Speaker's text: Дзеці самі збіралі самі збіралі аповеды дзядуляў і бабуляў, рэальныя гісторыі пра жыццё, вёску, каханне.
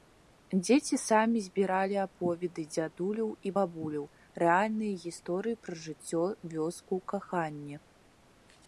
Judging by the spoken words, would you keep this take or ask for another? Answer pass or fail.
fail